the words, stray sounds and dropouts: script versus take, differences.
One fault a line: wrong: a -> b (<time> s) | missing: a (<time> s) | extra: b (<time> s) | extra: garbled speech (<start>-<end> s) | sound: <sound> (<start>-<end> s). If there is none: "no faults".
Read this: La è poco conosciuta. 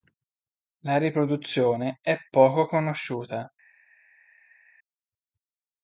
extra: riproduzione (1.0 s)